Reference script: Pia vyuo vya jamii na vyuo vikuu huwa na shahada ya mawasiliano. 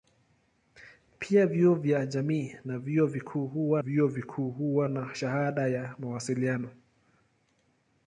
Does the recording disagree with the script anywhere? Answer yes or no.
yes